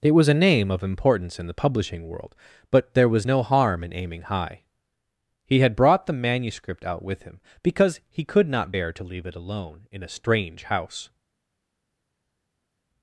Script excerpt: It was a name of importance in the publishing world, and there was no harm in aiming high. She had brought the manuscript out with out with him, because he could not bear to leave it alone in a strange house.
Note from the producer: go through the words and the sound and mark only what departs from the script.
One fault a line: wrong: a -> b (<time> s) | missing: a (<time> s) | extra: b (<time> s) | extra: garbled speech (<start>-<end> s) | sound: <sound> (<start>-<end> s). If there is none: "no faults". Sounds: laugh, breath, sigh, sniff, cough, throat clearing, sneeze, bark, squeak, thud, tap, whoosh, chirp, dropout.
wrong: and -> but (2.7 s)
wrong: She -> He (5.4 s)
missing: out with (7.2 s)